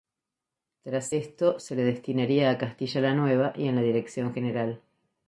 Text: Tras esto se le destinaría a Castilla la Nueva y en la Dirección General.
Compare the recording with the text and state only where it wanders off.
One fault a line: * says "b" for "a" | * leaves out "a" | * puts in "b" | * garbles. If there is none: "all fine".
all fine